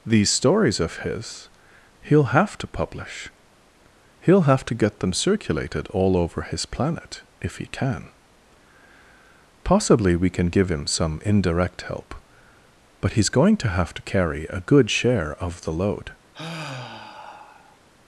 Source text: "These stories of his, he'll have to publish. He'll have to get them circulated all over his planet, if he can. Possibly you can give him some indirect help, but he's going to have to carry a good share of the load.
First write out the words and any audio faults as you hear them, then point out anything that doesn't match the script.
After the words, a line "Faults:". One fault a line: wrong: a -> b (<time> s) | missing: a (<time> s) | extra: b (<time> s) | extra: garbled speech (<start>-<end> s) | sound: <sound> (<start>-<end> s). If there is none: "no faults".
"These stories of his, he'll have to publish. He'll have to get them circulated all over his planet, if he can. Possibly we can give him some indirect help, but he's going to have to carry a good share of the load.
Faults:
wrong: you -> we (10.2 s)
sound: sigh (16.3-17.8 s)